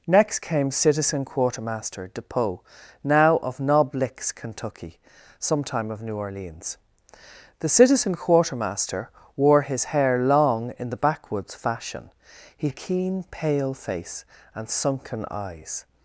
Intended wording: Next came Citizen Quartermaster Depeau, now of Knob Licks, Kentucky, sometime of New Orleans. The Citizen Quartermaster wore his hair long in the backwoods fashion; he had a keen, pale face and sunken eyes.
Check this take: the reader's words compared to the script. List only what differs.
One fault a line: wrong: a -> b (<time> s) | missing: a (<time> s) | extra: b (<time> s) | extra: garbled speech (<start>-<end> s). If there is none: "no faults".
missing: had (12.7 s)